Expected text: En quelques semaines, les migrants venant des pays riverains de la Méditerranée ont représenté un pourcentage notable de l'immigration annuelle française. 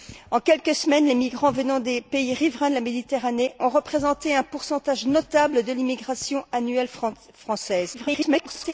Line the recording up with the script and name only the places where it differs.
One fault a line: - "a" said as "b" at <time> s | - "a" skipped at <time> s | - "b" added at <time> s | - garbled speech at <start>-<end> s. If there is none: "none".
- garbled speech at 7.9-8.7 s